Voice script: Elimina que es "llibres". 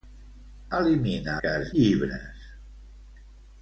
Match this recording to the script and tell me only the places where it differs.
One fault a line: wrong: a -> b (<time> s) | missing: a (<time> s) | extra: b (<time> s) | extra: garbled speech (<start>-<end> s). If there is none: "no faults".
no faults